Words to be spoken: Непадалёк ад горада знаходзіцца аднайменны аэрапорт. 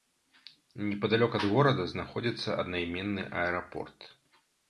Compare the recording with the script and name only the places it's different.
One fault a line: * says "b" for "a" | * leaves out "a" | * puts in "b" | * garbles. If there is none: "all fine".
all fine